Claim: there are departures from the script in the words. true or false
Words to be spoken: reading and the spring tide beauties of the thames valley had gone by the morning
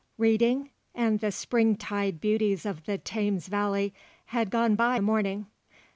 false